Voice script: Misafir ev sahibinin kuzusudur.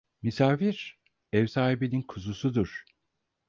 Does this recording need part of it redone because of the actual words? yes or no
no